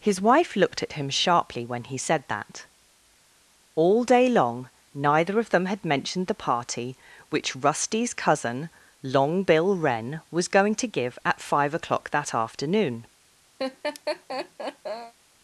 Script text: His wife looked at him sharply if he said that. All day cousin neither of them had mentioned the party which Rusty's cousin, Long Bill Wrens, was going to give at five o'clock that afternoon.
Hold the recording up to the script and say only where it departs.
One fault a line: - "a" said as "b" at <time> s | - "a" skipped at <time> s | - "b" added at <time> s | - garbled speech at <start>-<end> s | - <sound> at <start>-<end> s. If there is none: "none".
- "if" said as "when" at 1.6 s
- "cousin" said as "long" at 4.3 s
- "Wrens" said as "Wren" at 9.8 s
- laugh at 13.6-15.1 s